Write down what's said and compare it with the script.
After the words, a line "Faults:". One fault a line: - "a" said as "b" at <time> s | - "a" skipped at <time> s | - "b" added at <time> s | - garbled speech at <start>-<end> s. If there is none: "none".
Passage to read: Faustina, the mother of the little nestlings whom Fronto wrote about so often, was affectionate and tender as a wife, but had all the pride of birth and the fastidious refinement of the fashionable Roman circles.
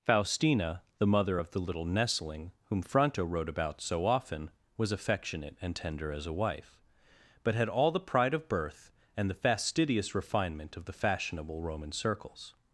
Faustina, the mother of the little nestling whom Fronto wrote about so often, was affectionate and tender as a wife, but had all the pride of birth and the fastidious refinement of the fashionable Roman circles.
Faults:
- "nestlings" said as "nestling" at 1.8 s